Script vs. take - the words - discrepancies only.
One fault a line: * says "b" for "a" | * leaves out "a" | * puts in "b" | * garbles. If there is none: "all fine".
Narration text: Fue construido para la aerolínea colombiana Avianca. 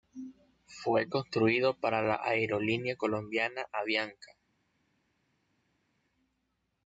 all fine